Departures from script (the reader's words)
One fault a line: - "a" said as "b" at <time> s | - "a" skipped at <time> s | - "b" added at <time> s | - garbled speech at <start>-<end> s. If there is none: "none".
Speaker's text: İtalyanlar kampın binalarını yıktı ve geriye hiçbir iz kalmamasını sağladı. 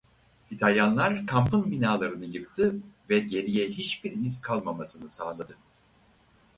none